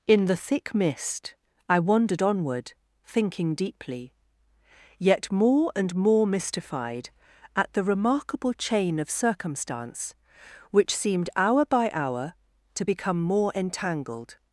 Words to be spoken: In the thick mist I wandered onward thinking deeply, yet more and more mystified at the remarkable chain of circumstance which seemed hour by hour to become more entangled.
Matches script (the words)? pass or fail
pass